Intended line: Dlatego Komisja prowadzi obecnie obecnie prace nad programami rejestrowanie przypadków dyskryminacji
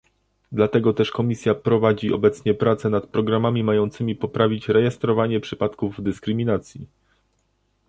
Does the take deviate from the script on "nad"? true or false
false